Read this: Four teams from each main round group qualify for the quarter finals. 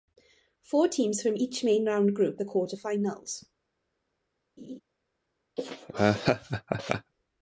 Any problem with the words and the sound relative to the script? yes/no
yes